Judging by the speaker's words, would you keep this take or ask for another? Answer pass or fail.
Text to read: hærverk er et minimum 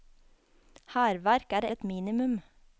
pass